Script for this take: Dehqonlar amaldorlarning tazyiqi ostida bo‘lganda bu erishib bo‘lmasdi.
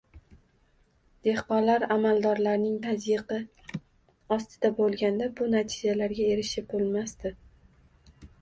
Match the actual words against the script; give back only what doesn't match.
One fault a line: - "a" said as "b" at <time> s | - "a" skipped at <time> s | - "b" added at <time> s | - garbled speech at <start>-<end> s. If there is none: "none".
- "natijalarga" added at 5.6 s